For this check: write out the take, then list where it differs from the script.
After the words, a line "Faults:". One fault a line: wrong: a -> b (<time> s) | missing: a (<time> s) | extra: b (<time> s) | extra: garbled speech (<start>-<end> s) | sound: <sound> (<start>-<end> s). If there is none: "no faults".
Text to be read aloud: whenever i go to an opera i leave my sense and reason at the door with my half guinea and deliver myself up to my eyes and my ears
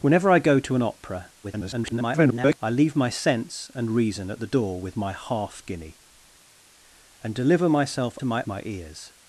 whenever i go to an opera [garbled] i leave my sense and reason at the door with my half guinea and deliver myself to my my ears
Faults:
extra: garbled speech (1.4-2.6 s)
missing: up (8.2 s)
missing: eyes and (8.4 s)